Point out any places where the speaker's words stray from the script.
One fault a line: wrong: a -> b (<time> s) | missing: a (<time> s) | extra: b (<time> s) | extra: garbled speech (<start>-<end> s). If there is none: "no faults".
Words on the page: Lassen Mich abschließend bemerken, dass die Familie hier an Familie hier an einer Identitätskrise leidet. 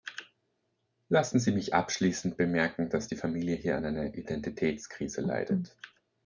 extra: Sie (1.4 s)
missing: Familie hier an (3.9 s)